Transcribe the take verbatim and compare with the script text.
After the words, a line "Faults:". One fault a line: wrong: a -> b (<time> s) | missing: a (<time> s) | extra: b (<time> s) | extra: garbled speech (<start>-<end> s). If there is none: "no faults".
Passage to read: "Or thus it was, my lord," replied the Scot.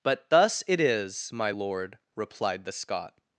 "But thus it is, my lord," replied the Scot.
Faults:
wrong: Or -> But (0.0 s)
wrong: was -> is (0.8 s)